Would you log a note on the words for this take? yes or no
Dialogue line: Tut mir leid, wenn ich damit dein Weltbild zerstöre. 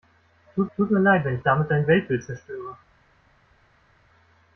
yes